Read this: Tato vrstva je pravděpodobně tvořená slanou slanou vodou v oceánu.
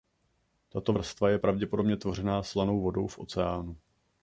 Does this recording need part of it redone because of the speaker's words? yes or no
yes